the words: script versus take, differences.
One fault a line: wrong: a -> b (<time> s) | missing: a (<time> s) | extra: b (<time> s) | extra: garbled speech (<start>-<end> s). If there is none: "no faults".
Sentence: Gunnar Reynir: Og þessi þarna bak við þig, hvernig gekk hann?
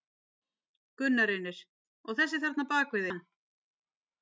missing: þig hvernig gekk (3.1 s)